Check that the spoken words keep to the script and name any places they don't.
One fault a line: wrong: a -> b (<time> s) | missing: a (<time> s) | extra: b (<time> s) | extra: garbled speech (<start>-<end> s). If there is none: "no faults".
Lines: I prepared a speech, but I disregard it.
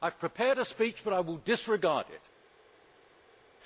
extra: have (0.1 s)
extra: will (1.2 s)